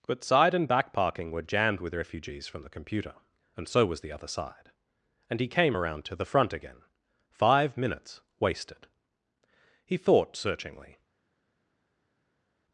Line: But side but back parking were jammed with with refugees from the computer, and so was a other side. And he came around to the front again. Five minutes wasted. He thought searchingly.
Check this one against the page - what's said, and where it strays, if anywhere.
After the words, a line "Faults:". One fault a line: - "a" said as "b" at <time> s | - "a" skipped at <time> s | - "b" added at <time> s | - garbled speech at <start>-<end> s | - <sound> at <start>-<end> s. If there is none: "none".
But side and back parking were jammed with refugees from the computer, and so was the other side. And he came around to the front again. Five minutes wasted. He thought searchingly.
Faults:
- "but" said as "and" at 0.5 s
- "with" skipped at 1.9 s
- "a" said as "the" at 4.0 s